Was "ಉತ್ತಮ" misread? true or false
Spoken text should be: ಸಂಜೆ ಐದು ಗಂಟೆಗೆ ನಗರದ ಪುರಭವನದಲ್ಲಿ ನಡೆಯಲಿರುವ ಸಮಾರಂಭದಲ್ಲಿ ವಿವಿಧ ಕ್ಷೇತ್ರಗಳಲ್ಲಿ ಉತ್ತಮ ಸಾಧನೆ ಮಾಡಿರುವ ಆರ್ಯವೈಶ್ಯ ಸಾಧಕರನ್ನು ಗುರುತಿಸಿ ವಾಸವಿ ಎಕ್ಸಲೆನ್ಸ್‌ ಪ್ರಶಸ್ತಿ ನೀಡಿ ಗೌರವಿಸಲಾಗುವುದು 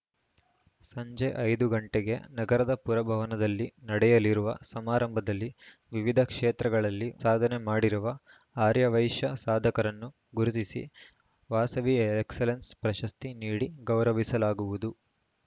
true